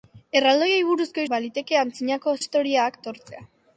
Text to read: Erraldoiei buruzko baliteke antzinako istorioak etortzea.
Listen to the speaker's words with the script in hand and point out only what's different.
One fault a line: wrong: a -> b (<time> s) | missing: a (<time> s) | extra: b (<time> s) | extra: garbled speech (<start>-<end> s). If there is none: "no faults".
no faults